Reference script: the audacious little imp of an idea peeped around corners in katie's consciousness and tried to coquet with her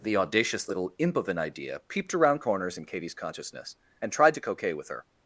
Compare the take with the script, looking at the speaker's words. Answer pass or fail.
pass